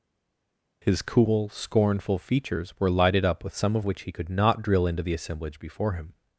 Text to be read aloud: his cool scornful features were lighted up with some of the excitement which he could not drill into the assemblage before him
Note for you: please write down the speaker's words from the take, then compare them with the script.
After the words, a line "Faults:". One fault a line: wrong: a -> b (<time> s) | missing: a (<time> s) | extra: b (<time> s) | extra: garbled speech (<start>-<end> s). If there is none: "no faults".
his cool scornful features were lighted up with some of which he could not drill into the assemblage before him
Faults:
missing: the excitement (3.9 s)